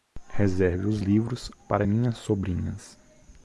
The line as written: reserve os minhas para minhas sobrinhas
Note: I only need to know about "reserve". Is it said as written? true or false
true